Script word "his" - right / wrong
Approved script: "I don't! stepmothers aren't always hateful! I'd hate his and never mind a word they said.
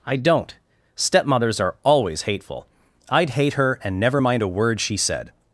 wrong